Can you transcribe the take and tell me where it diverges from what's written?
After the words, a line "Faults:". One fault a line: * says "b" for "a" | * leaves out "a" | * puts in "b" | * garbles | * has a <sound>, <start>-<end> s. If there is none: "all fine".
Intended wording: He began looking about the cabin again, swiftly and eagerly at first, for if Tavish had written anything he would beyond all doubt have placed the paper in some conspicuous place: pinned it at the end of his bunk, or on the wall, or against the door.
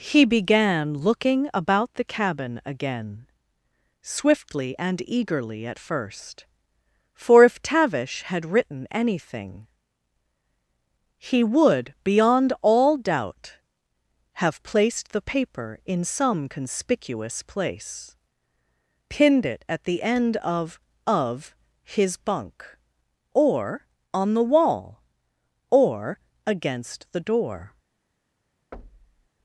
He began looking about the cabin again, swiftly and eagerly at first, for if Tavish had written anything he would beyond all doubt have placed the paper in some conspicuous place: pinned it at the end of of his bunk, or on the wall, or against the door.
Faults:
* puts in "of"
* has a thud, 28.7-29.3 s